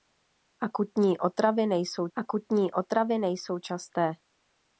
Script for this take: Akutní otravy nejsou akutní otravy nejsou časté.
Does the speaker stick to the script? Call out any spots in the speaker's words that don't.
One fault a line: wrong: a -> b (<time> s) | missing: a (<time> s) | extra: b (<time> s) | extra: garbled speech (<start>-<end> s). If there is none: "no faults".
no faults